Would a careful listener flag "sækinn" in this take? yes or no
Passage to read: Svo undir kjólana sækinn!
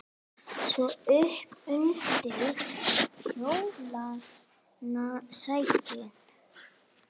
no